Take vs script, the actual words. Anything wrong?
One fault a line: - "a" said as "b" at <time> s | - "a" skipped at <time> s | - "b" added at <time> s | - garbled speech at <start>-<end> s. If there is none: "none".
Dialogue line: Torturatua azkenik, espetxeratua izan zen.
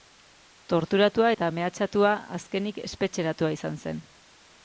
- "eta mehatxatua" added at 1.3 s